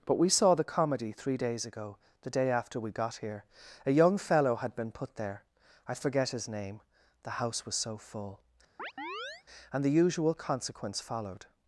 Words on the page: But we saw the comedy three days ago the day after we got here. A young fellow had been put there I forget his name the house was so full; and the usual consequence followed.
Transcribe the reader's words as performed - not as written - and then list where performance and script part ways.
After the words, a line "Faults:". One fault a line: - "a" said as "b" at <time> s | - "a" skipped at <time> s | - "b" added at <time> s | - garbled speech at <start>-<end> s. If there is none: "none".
But we saw the comedy three days ago the day after we got here. A young fellow had been put there I forget his name the house was so full; and the usual consequence followed.
Faults:
none